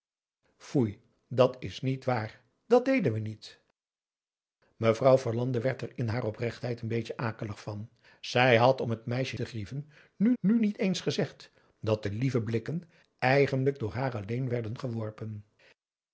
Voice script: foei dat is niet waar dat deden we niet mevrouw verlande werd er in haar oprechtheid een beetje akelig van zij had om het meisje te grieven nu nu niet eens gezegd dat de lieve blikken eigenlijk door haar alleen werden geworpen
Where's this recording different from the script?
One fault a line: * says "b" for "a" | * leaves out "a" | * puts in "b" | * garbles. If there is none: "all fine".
all fine